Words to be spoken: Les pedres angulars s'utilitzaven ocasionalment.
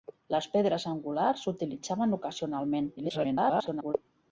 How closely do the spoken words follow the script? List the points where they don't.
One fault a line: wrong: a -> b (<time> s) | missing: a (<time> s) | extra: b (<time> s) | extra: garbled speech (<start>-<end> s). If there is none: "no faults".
extra: garbled speech (3.0-3.9 s)